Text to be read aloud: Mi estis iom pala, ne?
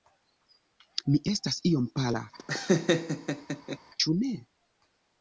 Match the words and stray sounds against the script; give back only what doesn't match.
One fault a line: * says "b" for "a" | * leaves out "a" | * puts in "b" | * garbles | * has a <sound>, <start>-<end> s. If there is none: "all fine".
* says "estas" for "estis"
* has a laugh, 2.4-3.8 s
* puts in "ĉu"